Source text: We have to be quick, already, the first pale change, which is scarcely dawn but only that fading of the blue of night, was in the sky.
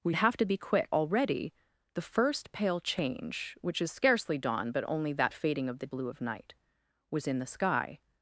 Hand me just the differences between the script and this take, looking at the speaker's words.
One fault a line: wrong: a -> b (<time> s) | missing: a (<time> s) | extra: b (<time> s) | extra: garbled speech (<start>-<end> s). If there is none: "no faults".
no faults